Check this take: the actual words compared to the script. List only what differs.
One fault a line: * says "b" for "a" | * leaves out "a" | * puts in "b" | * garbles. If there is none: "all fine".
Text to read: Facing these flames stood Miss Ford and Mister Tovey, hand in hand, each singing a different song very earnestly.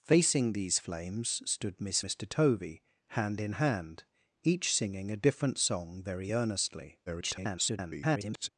* leaves out "Ford and"
* garbles